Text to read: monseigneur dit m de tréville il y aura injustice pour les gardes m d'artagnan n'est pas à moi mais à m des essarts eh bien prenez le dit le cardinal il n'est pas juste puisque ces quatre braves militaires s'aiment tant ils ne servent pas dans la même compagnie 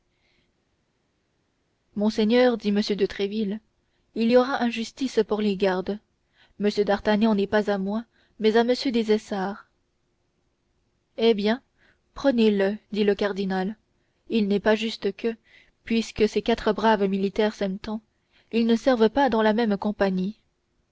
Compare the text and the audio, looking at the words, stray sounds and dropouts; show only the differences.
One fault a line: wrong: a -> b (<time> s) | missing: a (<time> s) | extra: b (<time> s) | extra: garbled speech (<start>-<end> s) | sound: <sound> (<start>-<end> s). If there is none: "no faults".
extra: que (15.2 s)